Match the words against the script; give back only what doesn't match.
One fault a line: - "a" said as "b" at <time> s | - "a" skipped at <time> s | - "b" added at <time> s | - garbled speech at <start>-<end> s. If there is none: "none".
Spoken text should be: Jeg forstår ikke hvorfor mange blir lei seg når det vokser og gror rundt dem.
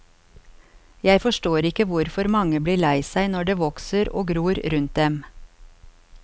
none